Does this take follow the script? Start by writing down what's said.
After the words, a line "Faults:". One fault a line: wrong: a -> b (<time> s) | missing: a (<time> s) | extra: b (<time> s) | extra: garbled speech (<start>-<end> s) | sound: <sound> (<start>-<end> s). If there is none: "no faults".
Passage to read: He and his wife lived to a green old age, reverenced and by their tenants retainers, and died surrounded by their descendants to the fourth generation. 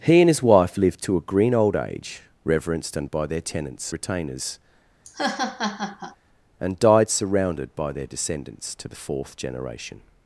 He and his wife lived to a green old age, reverenced and by their tenants retainers, and died surrounded by their descendants to the fourth generation.
Faults:
sound: laugh (5.0-6.2 s)